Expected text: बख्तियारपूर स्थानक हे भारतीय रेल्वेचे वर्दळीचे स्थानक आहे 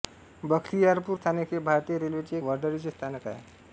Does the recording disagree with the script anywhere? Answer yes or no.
no